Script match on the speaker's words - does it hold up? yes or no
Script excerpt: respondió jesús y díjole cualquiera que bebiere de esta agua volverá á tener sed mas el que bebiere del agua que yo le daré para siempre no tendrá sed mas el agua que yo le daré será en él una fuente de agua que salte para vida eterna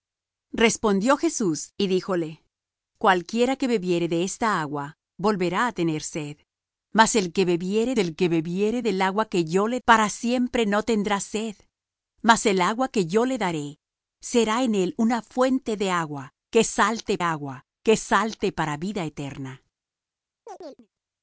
no